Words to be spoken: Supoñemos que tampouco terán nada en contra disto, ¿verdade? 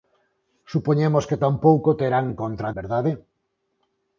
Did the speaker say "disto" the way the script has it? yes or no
no